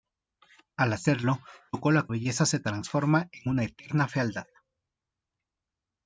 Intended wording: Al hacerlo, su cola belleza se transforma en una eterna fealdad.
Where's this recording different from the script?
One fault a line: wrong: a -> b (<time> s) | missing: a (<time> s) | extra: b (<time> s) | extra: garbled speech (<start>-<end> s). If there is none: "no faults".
no faults